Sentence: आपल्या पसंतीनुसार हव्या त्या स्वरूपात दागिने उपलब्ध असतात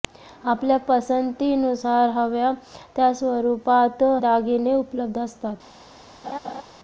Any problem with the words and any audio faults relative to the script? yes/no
yes